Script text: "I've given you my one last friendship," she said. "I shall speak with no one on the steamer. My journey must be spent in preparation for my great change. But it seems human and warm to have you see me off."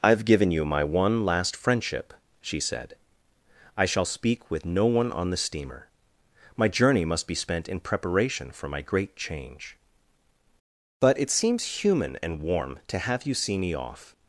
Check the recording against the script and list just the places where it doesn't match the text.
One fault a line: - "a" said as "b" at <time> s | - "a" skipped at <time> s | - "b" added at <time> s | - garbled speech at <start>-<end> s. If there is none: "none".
none